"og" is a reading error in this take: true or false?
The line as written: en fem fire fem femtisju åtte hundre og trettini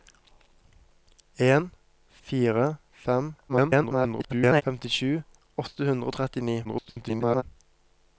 false